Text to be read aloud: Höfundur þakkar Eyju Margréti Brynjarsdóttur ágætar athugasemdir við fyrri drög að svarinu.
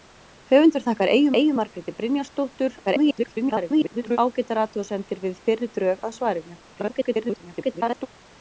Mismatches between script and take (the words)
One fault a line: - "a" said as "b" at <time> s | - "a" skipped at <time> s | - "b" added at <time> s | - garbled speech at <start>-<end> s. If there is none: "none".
- "Eyju" added at 1.4 s
- garbled speech at 2.9-4.2 s
- garbled speech at 6.7-8.1 s